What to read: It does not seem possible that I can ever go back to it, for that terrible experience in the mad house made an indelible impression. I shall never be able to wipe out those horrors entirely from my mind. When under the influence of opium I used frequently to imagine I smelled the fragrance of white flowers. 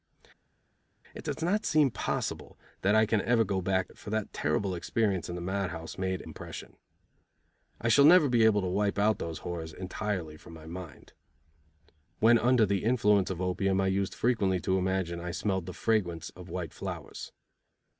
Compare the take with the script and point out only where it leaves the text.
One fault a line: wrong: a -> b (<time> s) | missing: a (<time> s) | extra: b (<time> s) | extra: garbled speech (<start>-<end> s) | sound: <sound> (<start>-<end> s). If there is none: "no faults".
missing: to (3.9 s)
missing: an indelible (6.2 s)